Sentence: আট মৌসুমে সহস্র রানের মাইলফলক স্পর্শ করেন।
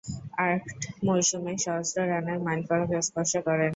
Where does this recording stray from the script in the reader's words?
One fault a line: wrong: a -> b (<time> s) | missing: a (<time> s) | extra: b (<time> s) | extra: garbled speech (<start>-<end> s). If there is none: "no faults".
no faults